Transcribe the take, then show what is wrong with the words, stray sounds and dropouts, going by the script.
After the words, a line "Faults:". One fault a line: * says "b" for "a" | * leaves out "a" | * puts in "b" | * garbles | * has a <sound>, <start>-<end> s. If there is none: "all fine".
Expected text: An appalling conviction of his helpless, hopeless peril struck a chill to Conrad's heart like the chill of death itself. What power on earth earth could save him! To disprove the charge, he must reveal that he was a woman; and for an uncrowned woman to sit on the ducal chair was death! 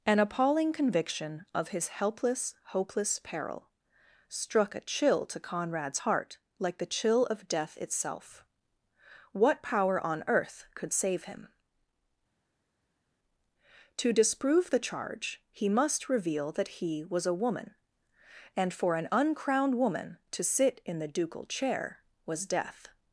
An appalling conviction of his helpless, hopeless peril struck a chill to Conrad's heart like the chill of death itself. What power on earth could save him! To disprove the charge, he must reveal that he was a woman; and for an uncrowned woman to sit in the ducal chair was death!
Faults:
* leaves out "earth"
* says "in" for "on"